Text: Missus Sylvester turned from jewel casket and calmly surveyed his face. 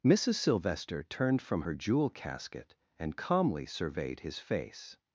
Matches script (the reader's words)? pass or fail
fail